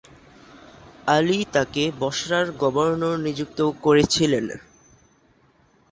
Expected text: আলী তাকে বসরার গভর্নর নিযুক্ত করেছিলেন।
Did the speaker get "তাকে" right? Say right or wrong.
right